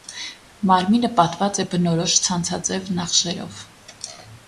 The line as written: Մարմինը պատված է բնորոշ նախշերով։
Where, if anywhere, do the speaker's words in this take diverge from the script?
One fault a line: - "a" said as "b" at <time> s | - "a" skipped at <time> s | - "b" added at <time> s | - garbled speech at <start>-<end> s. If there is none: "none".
- "ցանցաձև" added at 2.3 s